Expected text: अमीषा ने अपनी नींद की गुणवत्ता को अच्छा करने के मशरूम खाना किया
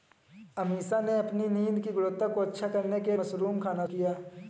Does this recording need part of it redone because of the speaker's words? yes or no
no